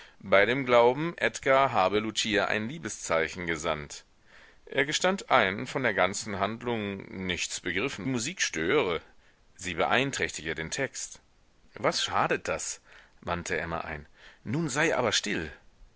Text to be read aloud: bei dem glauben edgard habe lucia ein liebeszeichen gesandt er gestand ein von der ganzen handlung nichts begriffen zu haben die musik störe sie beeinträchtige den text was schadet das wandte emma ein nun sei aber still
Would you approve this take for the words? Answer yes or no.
no